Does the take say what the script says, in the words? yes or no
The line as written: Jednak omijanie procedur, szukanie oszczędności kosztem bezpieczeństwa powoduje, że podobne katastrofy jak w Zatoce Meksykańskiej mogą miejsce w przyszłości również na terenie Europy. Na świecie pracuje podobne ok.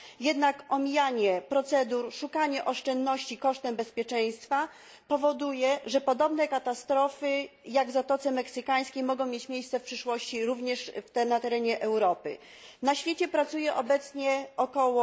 no